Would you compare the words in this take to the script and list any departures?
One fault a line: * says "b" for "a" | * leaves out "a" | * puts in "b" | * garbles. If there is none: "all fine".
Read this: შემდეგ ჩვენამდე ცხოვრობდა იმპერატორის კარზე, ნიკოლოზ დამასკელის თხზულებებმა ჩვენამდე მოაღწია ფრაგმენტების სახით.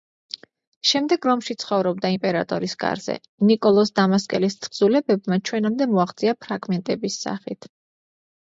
* says "რომში" for "ჩვენამდე"